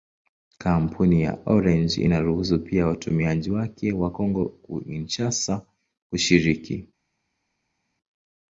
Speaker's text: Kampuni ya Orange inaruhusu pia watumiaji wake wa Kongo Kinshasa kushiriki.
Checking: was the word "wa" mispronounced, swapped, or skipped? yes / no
no